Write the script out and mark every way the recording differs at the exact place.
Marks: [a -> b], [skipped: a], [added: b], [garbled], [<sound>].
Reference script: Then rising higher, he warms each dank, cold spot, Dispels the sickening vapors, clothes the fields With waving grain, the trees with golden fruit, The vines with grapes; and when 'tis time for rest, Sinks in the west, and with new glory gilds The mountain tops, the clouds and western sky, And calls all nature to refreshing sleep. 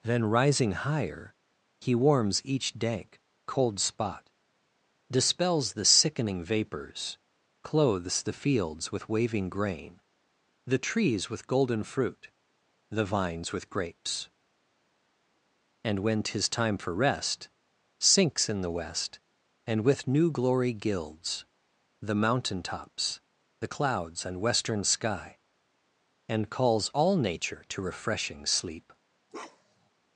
Then rising higher, he warms each dank, cold spot, Dispels the sickening vapors, clothes the fields With waving grain, the trees with golden fruit, The vines with grapes; and when 'tis time for rest, Sinks in the west, and with new glory gilds The mountain tops, the clouds and western sky, And calls all nature to refreshing sleep. [bark]